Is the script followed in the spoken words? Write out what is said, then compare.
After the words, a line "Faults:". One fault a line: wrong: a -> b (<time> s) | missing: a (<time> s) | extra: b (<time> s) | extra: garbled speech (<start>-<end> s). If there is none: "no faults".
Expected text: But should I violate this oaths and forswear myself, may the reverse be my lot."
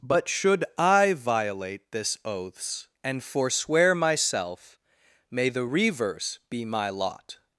But should I violate this oaths and forswear myself, may the reverse be my lot."
Faults:
no faults